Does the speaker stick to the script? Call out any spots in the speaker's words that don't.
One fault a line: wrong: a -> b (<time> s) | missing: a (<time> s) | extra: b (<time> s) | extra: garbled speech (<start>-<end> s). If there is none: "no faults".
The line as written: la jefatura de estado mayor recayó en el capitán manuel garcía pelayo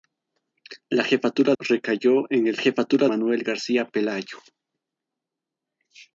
missing: de estado mayor (1.5 s)
wrong: capitán -> jefatura (2.6 s)